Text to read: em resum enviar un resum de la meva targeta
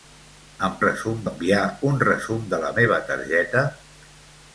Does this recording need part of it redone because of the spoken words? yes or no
no